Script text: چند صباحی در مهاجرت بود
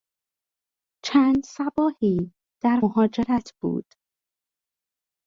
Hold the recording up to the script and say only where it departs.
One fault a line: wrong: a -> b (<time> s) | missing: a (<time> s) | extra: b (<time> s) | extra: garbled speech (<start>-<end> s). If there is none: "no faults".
no faults